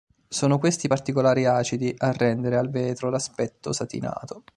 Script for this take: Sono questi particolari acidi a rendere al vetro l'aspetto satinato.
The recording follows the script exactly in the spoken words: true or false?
true